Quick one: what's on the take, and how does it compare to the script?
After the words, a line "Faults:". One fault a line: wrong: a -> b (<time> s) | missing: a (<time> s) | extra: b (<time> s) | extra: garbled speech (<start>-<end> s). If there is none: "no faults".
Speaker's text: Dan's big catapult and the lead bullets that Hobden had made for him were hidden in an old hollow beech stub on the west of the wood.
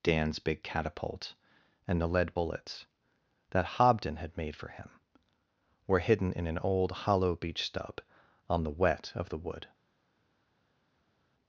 Dan's big catapult and the lead bullets that Hobden had made for him were hidden in an old hollow beech stub on the wet of the wood.
Faults:
wrong: west -> wet (8.7 s)